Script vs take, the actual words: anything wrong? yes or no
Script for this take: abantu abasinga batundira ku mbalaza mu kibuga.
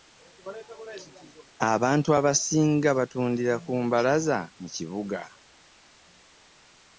no